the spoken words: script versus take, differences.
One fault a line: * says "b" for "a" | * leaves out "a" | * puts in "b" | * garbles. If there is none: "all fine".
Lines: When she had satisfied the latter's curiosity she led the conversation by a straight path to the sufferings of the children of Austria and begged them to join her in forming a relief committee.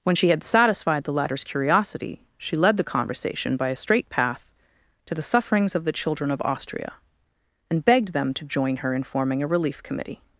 all fine